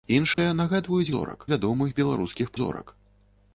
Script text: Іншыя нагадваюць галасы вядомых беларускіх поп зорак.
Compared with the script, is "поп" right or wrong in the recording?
wrong